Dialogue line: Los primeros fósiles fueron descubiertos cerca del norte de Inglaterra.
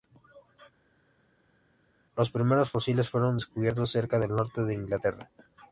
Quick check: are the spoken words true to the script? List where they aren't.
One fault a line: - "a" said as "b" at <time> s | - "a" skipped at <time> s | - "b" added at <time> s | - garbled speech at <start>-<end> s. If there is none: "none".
none